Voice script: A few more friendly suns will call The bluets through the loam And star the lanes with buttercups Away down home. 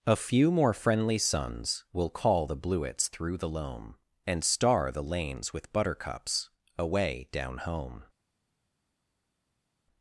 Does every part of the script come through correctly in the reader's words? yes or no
yes